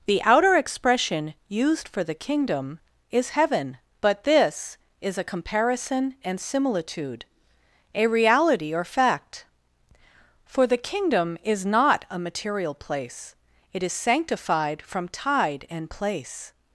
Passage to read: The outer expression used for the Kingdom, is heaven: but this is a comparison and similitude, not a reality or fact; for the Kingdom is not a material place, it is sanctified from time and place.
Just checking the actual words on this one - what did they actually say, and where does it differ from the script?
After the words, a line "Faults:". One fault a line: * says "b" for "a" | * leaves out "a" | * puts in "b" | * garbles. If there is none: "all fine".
The outer expression used for the Kingdom, is heaven: but this is a comparison and similitude, a reality or fact; for the Kingdom is not a material place, it is sanctified from tide and place.
Faults:
* leaves out "not"
* says "tide" for "time"